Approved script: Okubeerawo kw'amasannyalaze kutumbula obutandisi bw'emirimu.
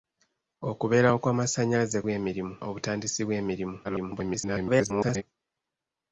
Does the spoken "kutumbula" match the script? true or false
false